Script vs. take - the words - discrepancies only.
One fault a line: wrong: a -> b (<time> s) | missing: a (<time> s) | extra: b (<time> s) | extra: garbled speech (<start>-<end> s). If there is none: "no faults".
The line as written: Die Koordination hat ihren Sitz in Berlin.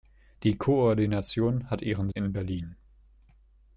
missing: Sitz (2.1 s)